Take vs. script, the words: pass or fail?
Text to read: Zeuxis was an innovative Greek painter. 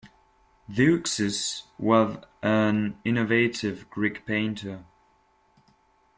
pass